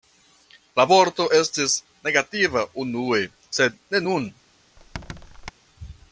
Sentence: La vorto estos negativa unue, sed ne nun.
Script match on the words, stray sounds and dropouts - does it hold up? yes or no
no